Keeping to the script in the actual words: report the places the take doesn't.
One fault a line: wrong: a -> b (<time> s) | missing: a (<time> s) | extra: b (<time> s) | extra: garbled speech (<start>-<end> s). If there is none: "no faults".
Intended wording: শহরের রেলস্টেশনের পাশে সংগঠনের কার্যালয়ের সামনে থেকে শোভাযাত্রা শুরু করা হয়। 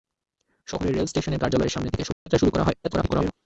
missing: পাশে সংগঠনের (1.4 s)
extra: garbled speech (2.8-3.3 s)